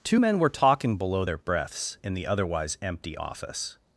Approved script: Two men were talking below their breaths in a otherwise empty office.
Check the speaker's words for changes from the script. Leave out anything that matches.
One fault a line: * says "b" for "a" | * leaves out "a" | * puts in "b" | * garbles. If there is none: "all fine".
* says "the" for "a"